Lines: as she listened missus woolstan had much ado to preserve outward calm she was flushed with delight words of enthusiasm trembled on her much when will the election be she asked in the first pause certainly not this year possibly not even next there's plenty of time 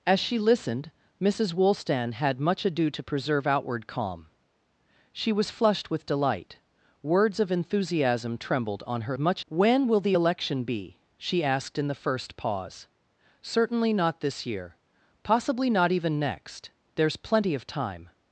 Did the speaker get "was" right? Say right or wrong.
right